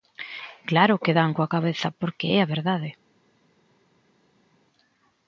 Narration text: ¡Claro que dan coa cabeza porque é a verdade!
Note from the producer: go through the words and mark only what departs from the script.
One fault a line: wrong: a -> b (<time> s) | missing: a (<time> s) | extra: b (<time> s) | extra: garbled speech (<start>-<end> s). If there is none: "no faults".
no faults